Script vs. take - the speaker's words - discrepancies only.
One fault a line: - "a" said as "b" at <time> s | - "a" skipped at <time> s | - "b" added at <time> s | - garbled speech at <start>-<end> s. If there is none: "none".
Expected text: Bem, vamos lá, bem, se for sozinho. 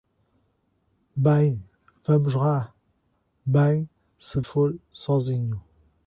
none